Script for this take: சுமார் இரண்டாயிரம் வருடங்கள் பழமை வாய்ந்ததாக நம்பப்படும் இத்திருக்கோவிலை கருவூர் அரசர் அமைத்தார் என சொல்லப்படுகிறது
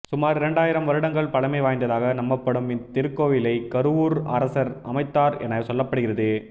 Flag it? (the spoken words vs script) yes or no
no